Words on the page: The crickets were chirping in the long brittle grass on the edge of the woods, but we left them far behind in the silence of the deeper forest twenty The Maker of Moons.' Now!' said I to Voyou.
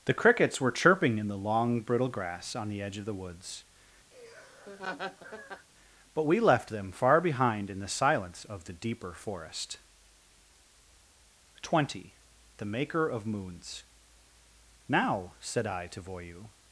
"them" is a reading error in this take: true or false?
false